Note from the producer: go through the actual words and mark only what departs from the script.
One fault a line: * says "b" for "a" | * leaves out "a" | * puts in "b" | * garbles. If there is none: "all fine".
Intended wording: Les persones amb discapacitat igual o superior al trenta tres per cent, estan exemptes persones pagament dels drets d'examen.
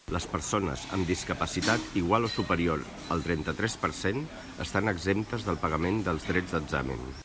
* says "del" for "persones"